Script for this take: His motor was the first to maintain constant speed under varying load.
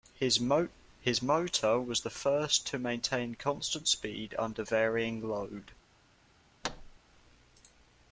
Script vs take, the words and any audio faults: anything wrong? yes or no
yes